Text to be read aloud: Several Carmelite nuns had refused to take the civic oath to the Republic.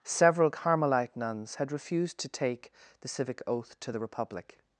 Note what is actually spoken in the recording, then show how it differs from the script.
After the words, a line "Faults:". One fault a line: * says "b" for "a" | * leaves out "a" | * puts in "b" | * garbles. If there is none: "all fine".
Several Carmelite nuns had refused to take the civic oath to the Republic.
Faults:
all fine